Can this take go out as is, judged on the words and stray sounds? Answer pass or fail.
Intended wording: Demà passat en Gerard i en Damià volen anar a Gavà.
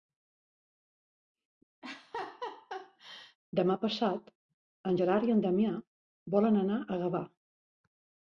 fail